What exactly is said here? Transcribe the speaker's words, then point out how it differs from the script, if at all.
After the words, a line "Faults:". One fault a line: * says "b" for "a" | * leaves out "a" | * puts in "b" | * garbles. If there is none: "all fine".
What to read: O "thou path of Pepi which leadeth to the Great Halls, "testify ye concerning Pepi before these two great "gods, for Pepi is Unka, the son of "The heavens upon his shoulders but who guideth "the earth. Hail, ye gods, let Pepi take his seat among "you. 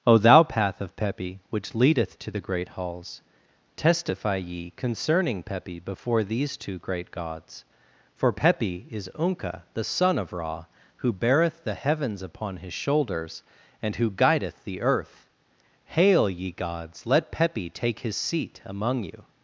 O "thou path of Pepi which leadeth to the Great Halls, "testify ye concerning Pepi before these two great "gods, for Pepi is Unka, the son of Ra, who beareth "the heavens upon his shoulders and who guideth "the earth. Hail, ye gods, let Pepi take his seat among "you.
Faults:
* puts in "Ra who beareth"
* says "and" for "but"